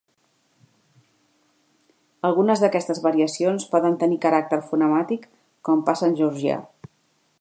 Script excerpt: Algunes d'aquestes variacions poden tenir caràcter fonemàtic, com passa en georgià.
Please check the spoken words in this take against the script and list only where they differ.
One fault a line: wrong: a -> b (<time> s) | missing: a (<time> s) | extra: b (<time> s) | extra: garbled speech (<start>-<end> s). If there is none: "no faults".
no faults